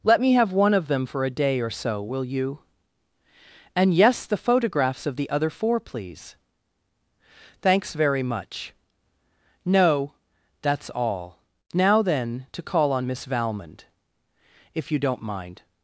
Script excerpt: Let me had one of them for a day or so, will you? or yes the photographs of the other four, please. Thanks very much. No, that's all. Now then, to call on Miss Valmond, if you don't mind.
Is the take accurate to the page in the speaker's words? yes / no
no